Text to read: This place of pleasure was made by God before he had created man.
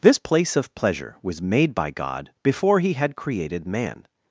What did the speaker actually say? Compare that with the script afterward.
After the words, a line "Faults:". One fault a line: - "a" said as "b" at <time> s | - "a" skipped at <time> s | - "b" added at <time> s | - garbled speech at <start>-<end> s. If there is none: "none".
This place of pleasure was made by God before he had created man.
Faults:
none